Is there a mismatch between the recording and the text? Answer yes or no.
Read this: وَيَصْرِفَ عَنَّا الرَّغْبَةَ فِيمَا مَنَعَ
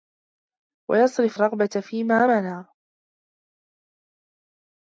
yes